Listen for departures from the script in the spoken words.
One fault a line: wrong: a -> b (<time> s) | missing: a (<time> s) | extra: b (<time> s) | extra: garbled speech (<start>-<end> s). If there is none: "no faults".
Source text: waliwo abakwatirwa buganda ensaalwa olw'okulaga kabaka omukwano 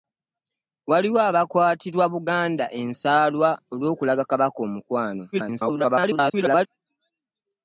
extra: garbled speech (5.3-6.7 s)